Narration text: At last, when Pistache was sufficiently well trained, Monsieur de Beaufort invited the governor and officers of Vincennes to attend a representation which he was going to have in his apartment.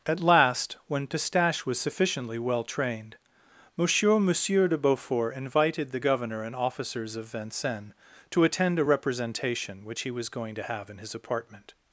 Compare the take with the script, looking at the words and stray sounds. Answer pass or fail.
fail